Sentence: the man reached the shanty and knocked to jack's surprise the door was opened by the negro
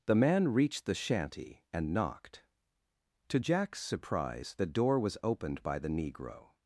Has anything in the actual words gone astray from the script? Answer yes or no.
no